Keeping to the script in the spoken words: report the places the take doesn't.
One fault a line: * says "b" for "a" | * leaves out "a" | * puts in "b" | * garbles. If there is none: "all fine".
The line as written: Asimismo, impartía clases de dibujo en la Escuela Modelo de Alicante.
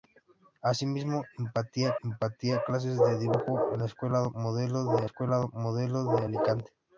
* puts in "impartía"
* puts in "Escuela Modelo de"